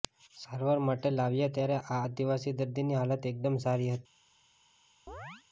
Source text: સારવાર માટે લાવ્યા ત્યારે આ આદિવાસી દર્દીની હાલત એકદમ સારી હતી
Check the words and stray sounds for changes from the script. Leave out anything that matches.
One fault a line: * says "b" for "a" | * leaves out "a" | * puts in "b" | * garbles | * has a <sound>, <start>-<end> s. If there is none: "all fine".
* has a chirp, 5.1-5.4 s